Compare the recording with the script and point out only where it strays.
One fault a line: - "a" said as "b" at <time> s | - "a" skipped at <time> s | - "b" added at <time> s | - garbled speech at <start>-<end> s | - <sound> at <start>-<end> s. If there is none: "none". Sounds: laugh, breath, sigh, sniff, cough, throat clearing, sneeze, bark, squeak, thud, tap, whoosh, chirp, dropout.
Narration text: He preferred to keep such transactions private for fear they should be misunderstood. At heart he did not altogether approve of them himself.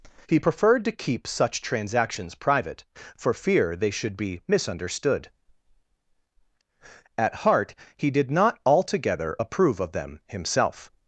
none